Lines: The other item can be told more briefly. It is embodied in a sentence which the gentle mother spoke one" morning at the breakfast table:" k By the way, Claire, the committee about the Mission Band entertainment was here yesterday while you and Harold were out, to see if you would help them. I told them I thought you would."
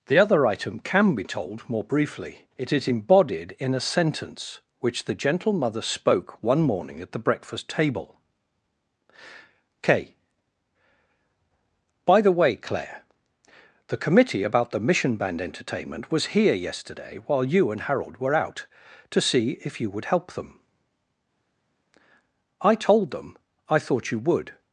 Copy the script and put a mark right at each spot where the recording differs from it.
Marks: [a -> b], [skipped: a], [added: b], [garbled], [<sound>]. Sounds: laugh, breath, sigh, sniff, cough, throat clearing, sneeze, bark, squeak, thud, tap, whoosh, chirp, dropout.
The other item can be told more briefly. It is embodied in a sentence which the gentle mother spoke one" morning at the breakfast table:" k By the way, Claire, the committee about the Mission Band entertainment was here yesterday while you and Harold were out, to see if you would help them. I told them I thought you would."